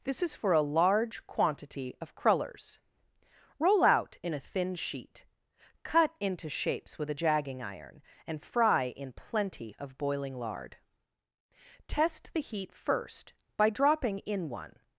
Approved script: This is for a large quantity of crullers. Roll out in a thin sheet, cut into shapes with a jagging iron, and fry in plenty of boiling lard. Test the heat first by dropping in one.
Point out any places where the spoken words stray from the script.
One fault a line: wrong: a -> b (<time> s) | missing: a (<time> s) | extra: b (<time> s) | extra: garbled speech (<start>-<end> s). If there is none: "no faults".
no faults